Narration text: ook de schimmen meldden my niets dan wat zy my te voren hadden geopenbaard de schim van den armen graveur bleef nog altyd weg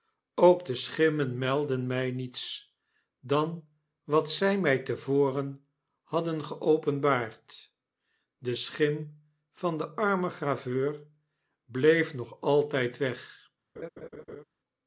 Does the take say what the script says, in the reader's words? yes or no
yes